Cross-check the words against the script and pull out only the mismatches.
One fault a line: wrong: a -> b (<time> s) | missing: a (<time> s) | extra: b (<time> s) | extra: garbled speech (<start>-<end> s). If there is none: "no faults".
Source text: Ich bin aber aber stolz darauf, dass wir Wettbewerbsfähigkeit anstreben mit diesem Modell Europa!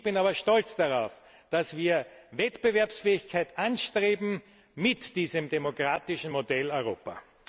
missing: aber (0.3 s)
extra: demokratischen (5.5 s)